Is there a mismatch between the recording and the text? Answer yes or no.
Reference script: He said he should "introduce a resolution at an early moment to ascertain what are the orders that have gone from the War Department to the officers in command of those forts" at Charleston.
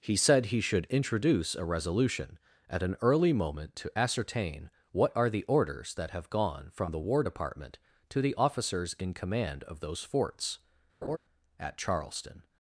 no